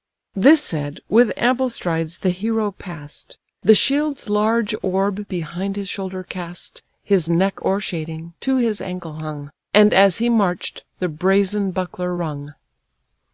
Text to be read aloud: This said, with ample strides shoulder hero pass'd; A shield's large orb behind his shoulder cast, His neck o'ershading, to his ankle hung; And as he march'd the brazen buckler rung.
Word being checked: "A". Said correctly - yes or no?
no